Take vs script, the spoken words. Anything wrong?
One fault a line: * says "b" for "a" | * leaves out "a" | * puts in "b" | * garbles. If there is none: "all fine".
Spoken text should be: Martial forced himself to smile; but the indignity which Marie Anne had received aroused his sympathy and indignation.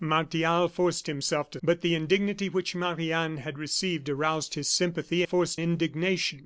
* leaves out "smile"
* says "forced" for "and"